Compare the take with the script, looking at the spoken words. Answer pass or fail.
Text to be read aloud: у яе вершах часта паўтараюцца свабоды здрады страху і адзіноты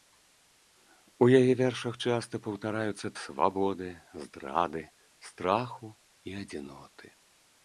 pass